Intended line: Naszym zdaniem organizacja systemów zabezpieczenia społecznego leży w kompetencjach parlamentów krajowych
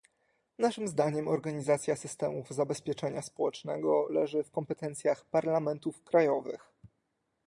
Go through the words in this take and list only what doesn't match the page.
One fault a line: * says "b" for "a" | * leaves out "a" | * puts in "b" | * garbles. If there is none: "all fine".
all fine